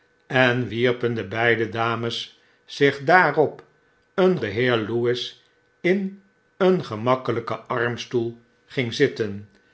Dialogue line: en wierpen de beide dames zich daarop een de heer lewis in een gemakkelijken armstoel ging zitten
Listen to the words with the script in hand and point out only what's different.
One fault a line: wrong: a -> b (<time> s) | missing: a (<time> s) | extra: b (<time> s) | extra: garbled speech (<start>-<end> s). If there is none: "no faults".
no faults